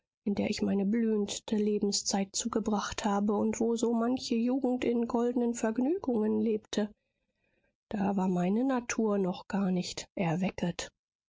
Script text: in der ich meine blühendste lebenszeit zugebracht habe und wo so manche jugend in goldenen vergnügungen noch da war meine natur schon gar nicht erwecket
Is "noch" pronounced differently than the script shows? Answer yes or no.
yes